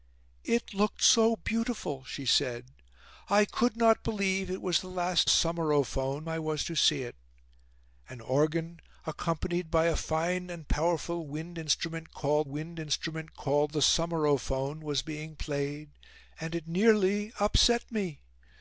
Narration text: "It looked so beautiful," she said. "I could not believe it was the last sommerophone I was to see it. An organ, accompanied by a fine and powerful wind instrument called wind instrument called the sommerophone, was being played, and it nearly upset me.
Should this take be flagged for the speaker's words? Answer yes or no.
no